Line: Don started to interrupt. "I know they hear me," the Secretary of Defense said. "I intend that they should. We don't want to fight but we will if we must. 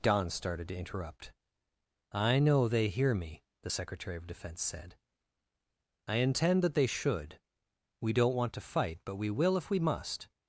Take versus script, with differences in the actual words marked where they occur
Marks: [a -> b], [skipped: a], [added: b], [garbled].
Don started to interrupt. "I know they hear me," the Secretary of Defense said. "I intend that they should. We don't want to fight but we will if we must.